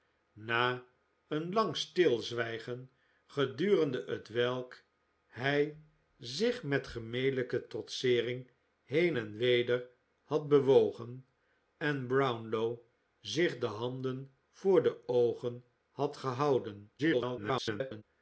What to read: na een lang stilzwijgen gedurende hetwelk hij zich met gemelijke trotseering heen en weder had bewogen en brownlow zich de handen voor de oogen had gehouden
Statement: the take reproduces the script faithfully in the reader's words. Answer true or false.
false